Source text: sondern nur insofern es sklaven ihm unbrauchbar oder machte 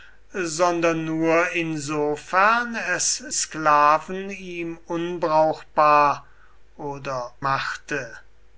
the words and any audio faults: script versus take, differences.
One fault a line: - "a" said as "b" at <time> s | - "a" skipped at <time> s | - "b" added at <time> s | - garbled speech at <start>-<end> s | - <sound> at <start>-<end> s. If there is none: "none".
none